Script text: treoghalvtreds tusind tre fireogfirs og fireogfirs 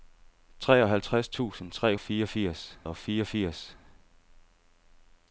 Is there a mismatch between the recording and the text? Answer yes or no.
no